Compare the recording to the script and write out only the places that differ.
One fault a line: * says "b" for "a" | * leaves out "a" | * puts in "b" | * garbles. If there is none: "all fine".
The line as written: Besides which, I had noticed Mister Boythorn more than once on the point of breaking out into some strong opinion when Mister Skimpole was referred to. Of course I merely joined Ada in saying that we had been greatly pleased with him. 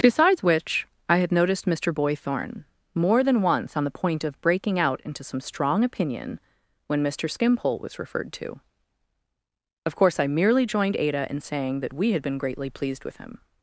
all fine